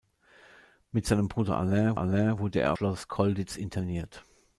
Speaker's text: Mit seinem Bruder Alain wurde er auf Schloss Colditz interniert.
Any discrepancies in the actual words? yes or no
yes